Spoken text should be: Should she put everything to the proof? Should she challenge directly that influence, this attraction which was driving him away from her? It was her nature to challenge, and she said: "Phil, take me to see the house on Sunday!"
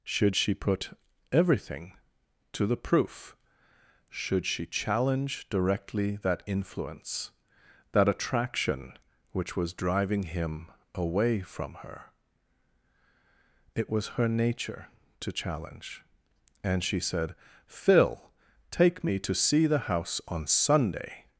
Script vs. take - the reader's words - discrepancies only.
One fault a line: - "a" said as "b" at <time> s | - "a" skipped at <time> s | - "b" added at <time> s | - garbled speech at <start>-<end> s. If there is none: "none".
- "this" said as "that" at 7.9 s